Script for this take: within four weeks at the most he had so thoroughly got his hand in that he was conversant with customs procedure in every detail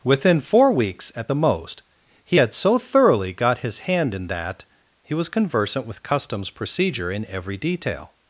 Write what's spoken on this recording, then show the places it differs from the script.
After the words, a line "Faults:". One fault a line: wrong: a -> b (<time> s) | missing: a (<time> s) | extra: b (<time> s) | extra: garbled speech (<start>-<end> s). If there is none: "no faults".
within four weeks at the most he had so thoroughly got his hand in that he was conversant with customs procedure in every detail
Faults:
no faults